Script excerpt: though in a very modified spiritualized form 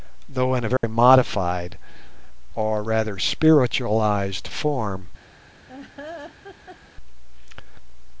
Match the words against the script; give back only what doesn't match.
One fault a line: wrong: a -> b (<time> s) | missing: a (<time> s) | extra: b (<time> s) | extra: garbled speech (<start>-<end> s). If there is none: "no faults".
extra: or rather (2.5 s)